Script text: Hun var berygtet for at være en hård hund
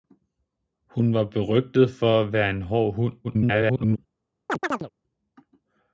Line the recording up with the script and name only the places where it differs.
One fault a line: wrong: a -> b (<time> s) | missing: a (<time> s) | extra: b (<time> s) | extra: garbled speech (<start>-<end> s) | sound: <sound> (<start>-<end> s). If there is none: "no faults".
extra: garbled speech (3.2-4.0 s)
sound: chirp (4.5-4.9 s)